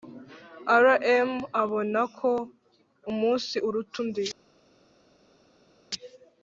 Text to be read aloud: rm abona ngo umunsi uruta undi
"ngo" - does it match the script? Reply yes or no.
no